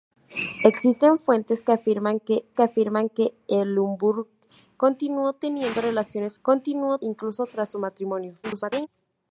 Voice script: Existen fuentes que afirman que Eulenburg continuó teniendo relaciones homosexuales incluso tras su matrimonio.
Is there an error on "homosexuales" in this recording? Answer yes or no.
yes